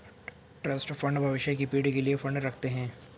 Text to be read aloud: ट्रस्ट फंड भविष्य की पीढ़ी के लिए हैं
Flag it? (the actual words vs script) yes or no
yes